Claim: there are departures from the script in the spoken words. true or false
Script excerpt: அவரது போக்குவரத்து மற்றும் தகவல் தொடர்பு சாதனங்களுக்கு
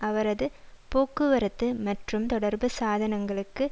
true